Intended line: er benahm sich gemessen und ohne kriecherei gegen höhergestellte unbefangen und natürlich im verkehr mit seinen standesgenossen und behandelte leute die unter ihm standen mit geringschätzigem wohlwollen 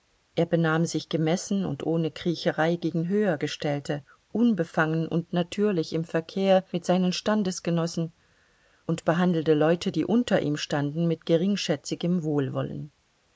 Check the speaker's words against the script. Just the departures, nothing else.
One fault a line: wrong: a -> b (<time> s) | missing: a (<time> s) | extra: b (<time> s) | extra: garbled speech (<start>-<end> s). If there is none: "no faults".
no faults